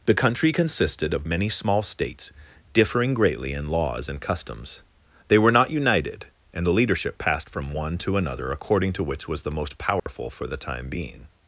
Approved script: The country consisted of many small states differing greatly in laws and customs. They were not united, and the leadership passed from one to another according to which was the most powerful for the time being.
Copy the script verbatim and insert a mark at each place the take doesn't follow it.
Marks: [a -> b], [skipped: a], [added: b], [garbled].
The country consisted of many small states differing greatly in laws and customs. They were not united, and the leadership passed from one to another according to which was the most powerful for the time being.